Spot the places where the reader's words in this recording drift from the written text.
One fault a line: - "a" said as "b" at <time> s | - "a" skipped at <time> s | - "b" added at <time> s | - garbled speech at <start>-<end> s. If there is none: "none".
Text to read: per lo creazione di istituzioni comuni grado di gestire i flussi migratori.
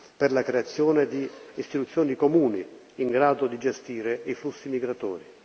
- "lo" said as "la" at 0.3 s
- "in" added at 3.0 s